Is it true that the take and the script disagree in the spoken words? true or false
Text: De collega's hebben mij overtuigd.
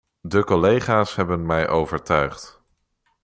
false